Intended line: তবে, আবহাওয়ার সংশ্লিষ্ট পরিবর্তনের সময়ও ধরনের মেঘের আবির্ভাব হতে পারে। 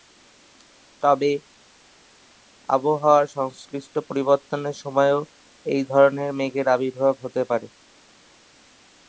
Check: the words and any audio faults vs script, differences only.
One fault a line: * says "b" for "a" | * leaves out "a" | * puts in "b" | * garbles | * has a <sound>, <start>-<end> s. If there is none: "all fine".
* puts in "এই"